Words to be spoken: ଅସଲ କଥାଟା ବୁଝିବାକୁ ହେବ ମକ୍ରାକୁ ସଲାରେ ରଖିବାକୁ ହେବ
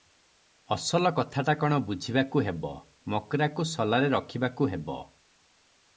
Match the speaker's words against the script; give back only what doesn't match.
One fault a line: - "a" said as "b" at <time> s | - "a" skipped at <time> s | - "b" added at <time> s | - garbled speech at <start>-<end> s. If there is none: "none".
- "କ'ଣ" added at 1.6 s